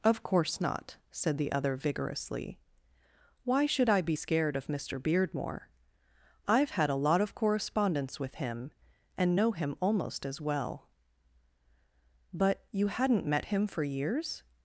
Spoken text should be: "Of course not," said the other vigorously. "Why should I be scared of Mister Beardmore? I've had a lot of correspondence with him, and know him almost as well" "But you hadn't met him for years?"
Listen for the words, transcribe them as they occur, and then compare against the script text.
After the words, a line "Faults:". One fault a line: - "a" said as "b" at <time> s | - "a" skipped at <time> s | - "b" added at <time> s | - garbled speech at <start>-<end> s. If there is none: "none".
"Of course not," said the other vigorously. "Why should I be scared of Mister Beardmore? I've had a lot of correspondence with him, and know him almost as well" "But you hadn't met him for years?"
Faults:
none